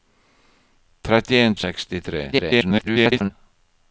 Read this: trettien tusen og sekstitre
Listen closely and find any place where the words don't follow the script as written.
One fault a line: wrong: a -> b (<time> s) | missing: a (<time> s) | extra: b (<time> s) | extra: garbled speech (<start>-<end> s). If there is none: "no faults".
missing: tusen (1.6 s)
extra: garbled speech (2.3-3.3 s)